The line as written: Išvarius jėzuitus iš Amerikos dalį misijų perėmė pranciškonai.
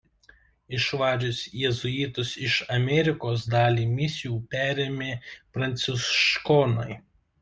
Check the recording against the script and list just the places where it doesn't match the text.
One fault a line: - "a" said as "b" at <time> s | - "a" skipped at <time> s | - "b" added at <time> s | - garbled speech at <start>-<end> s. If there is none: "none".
none